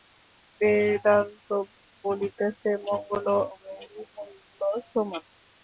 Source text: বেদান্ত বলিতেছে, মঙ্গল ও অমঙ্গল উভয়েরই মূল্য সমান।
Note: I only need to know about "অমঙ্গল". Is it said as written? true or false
false